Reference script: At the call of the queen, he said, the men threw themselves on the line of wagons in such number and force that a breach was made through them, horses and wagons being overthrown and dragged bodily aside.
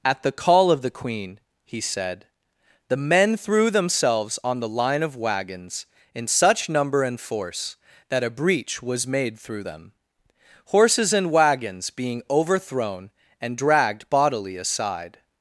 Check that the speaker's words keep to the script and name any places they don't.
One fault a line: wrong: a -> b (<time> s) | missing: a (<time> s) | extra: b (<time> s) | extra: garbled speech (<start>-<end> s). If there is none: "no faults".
no faults